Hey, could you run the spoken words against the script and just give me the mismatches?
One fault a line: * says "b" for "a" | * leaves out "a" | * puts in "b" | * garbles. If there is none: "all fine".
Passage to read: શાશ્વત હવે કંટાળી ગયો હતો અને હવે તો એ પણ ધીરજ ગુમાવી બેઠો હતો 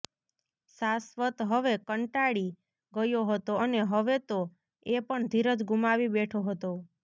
all fine